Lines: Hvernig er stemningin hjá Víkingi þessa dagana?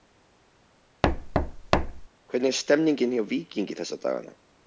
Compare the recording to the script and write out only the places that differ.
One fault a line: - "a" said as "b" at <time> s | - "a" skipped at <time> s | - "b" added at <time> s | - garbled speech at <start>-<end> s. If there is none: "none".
none